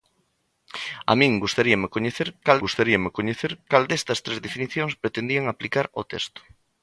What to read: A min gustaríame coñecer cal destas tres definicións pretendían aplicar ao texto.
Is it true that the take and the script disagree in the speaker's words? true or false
true